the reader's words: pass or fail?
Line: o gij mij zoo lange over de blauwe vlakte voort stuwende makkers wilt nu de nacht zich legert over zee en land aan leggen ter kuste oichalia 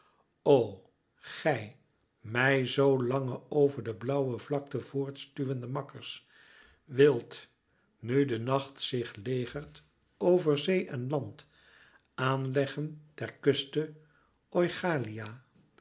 pass